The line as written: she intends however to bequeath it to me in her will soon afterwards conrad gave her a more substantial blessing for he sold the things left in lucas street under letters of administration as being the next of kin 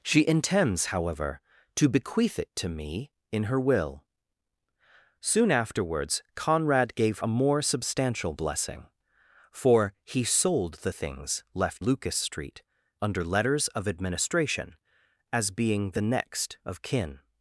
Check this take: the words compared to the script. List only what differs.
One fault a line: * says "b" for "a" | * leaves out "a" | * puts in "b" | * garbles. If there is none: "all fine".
* leaves out "her"
* leaves out "in"